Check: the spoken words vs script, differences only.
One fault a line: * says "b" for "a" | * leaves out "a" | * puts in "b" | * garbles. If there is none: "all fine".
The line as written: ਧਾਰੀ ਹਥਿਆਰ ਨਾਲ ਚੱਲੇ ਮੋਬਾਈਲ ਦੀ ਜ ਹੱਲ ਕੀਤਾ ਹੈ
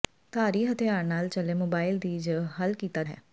all fine